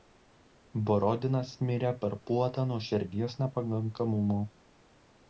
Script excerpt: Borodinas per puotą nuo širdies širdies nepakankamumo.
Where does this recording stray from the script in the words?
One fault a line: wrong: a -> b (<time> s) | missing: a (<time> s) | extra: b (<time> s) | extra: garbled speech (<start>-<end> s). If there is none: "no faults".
extra: mirė (1.7 s)
missing: širdies (3.4 s)